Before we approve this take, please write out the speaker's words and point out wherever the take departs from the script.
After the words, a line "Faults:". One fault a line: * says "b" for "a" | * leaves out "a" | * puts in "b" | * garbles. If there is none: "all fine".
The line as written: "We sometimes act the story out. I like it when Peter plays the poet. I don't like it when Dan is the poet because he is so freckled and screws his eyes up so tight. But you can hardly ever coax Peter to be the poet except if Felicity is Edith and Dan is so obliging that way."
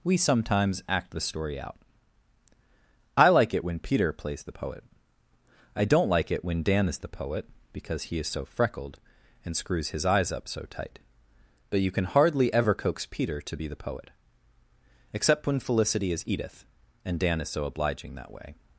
"We sometimes act the story out. I like it when Peter plays the poet. I don't like it when Dan is the poet because he is so freckled and screws his eyes up so tight. But you can hardly ever coax Peter to be the poet except when Felicity is Edith and Dan is so obliging that way."
Faults:
* says "when" for "if"